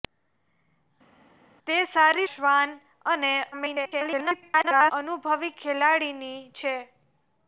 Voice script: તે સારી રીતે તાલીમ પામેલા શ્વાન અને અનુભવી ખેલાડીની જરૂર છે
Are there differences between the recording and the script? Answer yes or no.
yes